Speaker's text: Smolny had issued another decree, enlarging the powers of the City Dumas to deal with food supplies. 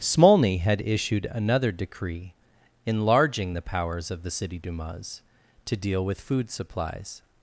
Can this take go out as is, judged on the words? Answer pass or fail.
pass